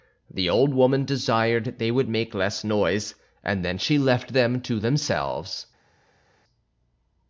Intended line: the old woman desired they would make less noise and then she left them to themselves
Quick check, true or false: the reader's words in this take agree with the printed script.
true